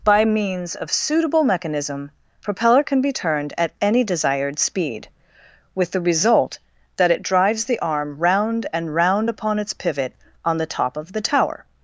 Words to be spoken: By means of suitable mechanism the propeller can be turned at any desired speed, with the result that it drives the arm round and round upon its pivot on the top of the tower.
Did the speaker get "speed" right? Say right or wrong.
right